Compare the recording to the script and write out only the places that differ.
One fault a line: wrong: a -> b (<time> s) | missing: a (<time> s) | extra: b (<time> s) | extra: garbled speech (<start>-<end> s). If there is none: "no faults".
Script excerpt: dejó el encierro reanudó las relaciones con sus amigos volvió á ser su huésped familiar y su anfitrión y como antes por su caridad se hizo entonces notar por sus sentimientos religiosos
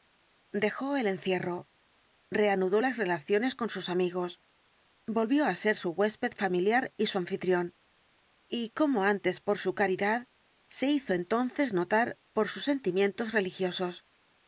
no faults